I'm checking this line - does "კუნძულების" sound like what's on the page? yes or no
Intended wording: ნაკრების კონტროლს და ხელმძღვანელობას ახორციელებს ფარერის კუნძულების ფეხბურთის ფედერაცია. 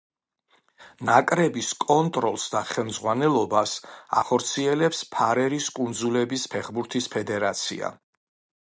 yes